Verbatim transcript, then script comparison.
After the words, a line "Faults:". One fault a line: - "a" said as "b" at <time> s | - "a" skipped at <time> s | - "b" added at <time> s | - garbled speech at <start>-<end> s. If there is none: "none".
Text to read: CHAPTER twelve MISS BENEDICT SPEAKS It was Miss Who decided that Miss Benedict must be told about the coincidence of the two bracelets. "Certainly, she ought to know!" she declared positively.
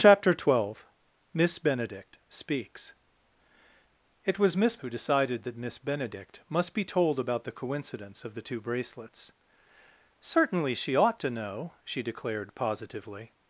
CHAPTER twelve MISS BENEDICT SPEAKS It was Miss Who decided that Miss Benedict must be told about the coincidence of the two bracelets. "Certainly, she ought to know!" she declared positively.
Faults:
none